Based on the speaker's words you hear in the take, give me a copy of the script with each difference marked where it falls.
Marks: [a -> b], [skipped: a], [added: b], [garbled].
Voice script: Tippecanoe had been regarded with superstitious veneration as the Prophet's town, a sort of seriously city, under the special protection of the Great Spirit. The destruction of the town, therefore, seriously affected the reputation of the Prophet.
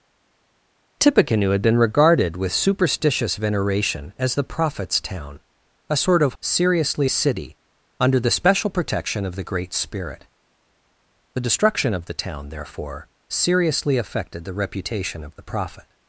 Tippecanoe had been regarded with superstitious veneration as the Prophet's town, a sort of seriously city, under the special protection of the Great Spirit. The destruction of the town, therefore, seriously affected the reputation of the Prophet.